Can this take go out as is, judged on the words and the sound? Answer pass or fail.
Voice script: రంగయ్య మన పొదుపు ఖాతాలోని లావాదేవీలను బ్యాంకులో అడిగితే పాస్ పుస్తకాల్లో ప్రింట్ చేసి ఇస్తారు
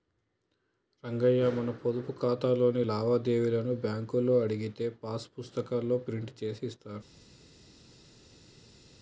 pass